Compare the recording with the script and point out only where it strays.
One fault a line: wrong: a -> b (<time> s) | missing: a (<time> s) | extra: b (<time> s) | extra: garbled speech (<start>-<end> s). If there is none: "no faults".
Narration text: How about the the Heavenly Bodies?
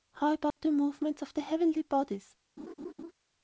extra: movements of (0.7 s)